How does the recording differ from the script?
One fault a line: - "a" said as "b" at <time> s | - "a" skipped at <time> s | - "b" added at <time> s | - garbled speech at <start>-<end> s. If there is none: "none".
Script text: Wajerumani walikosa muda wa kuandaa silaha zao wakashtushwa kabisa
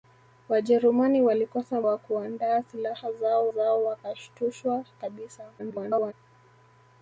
- "muda" skipped at 1.8 s
- "zao" added at 3.5 s
- garbled speech at 5.6-6.1 s